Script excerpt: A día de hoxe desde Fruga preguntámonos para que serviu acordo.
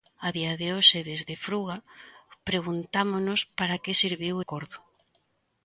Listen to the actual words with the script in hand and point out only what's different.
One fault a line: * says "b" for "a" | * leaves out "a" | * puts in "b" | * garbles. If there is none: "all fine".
all fine